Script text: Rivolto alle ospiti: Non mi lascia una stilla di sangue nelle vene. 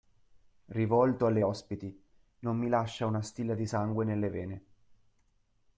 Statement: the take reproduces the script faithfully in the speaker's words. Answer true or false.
true